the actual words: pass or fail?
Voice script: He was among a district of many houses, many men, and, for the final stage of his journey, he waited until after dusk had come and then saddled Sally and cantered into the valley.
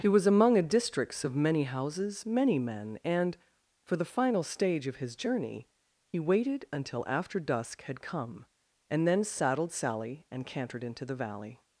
fail